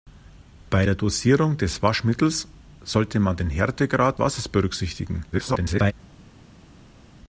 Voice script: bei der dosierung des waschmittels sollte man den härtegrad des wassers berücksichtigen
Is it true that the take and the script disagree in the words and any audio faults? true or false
true